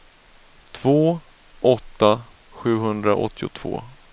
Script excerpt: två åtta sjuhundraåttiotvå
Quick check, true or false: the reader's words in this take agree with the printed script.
true